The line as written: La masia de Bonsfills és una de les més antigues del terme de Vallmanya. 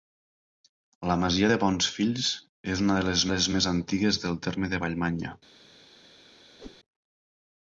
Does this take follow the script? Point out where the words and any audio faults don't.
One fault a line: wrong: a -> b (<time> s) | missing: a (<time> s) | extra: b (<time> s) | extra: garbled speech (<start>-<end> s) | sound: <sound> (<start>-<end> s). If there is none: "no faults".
extra: les (3.3 s)
sound: whoosh (6.6-6.8 s)